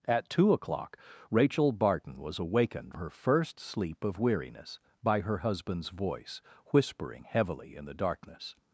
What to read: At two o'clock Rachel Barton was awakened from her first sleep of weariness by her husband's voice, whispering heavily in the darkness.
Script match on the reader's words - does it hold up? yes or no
no